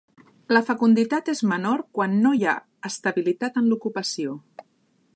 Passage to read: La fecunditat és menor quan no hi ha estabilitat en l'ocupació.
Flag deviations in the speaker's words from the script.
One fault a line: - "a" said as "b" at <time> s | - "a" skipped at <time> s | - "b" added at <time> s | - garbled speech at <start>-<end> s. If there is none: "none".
none